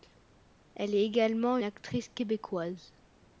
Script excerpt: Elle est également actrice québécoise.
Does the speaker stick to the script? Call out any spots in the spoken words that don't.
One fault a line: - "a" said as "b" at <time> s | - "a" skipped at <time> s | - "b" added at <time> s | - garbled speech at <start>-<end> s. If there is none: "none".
none